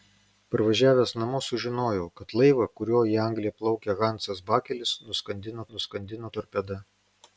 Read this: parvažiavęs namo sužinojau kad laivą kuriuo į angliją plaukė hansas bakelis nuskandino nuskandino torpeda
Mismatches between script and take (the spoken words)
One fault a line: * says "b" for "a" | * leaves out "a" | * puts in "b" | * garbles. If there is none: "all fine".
all fine